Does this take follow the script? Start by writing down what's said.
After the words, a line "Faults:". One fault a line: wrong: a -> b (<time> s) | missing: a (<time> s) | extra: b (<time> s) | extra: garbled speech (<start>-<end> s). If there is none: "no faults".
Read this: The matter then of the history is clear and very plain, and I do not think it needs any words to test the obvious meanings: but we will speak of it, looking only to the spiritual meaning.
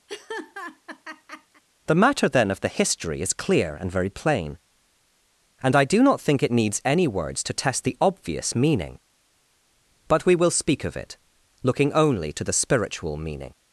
The matter then of the history is clear and very plain, and I do not think it needs any words to test the obvious meaning: but we will speak of it, looking only to the spiritual meaning.
Faults:
wrong: meanings -> meaning (8.5 s)